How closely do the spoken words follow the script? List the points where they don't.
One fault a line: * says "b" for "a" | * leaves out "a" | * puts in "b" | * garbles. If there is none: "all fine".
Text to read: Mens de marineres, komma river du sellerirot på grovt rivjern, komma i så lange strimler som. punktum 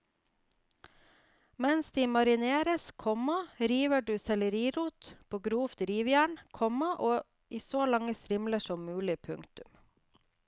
* puts in "mulig"